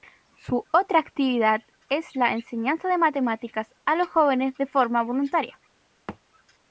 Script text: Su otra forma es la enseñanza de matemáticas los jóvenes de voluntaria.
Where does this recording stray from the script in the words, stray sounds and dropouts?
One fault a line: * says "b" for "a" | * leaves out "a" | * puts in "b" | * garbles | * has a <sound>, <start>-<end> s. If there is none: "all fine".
* says "actividad" for "forma"
* puts in "a"
* puts in "forma"
* has a thud, 6.1-6.2 s